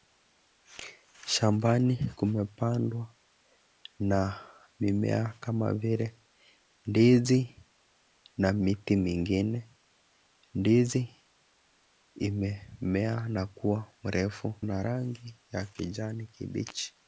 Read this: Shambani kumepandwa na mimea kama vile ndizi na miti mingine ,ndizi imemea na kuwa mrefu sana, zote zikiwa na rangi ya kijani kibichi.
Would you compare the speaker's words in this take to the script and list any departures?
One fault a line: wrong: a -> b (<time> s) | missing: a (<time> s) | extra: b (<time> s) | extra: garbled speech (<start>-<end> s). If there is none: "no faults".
missing: sana zote zikiwa (14.5 s)